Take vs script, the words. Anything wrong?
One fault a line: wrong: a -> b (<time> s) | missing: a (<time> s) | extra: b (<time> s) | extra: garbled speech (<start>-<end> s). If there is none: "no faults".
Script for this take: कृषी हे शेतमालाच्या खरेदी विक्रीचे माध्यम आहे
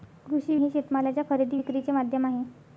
no faults